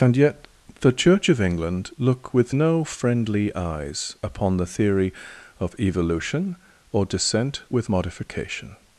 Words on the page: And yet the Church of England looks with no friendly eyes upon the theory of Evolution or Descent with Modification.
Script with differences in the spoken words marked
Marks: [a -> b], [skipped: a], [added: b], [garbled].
And yet the Church of England [looks -> look] with no friendly eyes upon the theory of Evolution or Descent with Modification.